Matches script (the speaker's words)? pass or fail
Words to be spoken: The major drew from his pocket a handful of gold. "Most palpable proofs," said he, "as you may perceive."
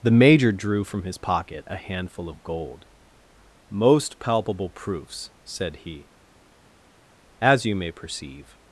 pass